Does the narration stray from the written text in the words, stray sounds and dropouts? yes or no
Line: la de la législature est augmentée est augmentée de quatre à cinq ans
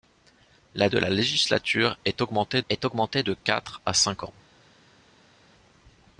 no